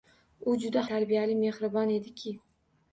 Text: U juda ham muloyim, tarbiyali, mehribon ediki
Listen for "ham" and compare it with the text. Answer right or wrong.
wrong